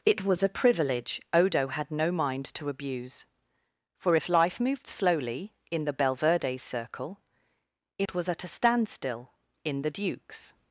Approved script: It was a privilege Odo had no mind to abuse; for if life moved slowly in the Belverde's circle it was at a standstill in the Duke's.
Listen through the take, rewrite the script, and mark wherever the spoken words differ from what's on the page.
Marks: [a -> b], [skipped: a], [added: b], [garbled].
It was a privilege Odo had no mind to abuse; for if life moved slowly in the Belverde's circle it was at a standstill in the Duke's.